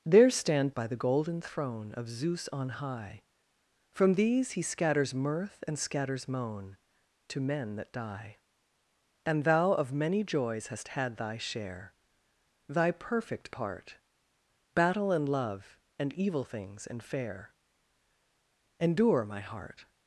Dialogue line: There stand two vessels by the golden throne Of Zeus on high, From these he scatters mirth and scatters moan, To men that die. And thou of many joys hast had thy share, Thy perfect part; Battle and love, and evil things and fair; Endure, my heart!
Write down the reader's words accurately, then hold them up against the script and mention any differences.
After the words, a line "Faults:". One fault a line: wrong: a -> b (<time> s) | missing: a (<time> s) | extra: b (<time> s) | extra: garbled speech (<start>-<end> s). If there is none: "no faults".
There stand by the golden throne Of Zeus on high, From these he scatters mirth and scatters moan, To men that die. And thou of many joys hast had thy share, Thy perfect part; Battle and love, and evil things and fair; Endure, my heart!
Faults:
missing: two vessels (0.7 s)